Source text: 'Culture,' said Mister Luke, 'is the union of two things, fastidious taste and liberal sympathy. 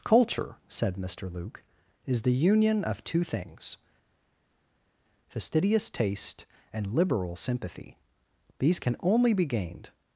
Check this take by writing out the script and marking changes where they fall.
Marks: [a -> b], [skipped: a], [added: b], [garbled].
'Culture,' said Mister Luke, 'is the union of two things, fastidious taste and liberal sympathy. [added: These can only be gained]